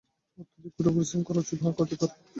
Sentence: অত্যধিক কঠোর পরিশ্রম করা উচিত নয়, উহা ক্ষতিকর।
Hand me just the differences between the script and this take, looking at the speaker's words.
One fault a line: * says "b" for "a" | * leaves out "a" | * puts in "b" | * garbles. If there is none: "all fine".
* leaves out "নয়"